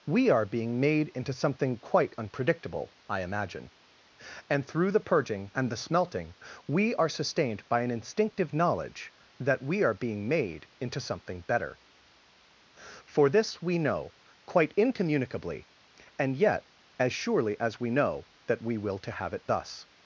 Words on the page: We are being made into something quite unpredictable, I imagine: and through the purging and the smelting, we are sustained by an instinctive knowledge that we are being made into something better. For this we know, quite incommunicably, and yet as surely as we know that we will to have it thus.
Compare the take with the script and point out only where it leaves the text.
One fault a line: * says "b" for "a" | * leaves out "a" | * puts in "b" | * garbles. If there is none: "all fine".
all fine